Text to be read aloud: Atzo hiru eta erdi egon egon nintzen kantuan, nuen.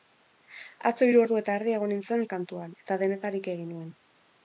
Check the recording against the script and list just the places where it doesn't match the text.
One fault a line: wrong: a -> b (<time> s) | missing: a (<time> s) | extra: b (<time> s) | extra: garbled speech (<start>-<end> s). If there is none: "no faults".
extra: ordu (1.2 s)
missing: egon (1.9 s)
extra: eta denetarik egin (2.9 s)